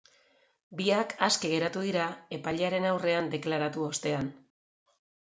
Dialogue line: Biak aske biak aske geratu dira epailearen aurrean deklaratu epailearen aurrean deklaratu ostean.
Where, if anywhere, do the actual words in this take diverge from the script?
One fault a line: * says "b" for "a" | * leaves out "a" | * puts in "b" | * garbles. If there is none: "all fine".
* leaves out "biak aske"
* leaves out "epailearen aurrean deklaratu"